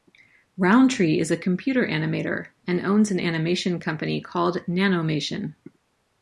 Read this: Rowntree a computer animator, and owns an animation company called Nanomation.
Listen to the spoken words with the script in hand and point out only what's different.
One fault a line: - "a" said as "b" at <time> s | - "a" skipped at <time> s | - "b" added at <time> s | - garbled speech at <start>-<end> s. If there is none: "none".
- "is" added at 1.2 s